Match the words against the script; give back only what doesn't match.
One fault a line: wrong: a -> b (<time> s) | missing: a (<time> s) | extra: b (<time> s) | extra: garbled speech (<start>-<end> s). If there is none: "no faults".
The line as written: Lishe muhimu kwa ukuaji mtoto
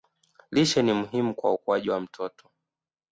extra: ni (0.8 s)
extra: wa (1.9 s)